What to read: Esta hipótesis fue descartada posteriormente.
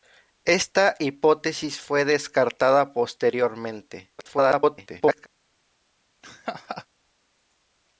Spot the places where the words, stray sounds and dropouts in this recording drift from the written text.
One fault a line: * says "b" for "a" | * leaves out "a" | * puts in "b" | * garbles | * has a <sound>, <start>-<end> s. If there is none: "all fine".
* garbles
* has a laugh, 6.2-6.9 s